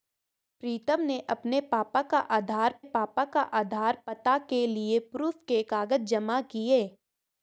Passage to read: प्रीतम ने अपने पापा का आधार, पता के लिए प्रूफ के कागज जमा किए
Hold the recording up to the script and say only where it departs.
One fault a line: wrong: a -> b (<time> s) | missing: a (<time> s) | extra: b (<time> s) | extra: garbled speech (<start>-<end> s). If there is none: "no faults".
extra: पापा का आधार (2.8 s)